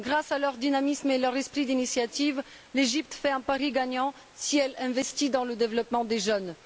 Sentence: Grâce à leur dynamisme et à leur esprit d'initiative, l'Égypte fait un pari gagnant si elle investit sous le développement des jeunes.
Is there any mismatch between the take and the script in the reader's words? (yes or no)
yes